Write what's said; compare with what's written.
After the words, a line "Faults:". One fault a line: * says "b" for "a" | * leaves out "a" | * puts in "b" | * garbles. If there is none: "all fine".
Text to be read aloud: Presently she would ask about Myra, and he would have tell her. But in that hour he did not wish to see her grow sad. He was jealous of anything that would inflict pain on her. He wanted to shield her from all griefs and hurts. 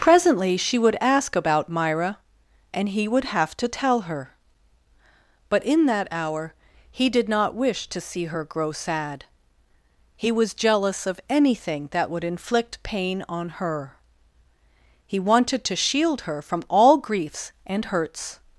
Presently she would ask about Myra, and he would have to tell her. But in that hour he did not wish to see her grow sad. He was jealous of anything that would inflict pain on her. He wanted to shield her from all griefs and hurts.
Faults:
* puts in "to"